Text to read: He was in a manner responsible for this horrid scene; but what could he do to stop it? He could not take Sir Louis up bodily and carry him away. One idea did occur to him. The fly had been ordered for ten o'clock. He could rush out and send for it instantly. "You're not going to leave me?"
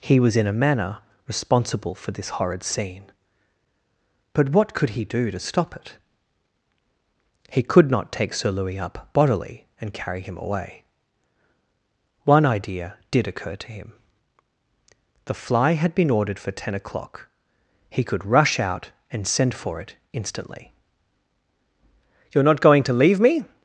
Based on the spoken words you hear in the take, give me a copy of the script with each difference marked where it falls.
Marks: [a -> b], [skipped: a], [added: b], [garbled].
He was in a manner responsible for this horrid scene; but what could he do to stop it? He could not take Sir Louis up bodily and carry him away. One idea did occur to him. The fly had been ordered for ten o'clock. He could rush out and send for it instantly. "You're not going to leave me?"